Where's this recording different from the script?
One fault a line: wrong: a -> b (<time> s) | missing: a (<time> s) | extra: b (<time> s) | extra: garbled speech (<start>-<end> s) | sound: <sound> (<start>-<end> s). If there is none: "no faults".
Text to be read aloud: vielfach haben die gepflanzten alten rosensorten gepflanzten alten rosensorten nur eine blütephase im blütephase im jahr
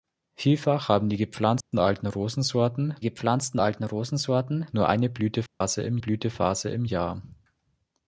sound: dropout (1.6-1.7 s)
sound: dropout (5.5-5.6 s)